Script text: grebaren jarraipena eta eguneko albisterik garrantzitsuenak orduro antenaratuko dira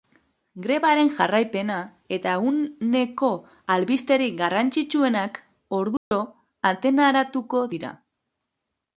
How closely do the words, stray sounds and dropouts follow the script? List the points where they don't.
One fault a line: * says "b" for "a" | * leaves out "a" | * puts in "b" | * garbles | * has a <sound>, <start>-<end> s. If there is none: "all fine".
* has a dropout, 6.0-6.1 s